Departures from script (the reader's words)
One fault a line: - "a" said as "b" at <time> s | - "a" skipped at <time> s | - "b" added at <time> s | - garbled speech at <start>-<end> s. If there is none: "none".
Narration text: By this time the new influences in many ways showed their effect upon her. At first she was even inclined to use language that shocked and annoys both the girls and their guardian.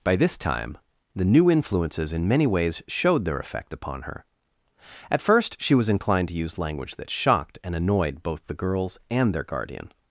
- "even" skipped at 5.9 s
- "annoys" said as "annoyed" at 7.8 s